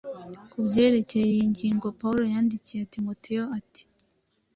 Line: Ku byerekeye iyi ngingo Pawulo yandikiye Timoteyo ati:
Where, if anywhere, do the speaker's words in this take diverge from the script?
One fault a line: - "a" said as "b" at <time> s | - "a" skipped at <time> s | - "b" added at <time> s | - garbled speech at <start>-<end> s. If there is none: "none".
none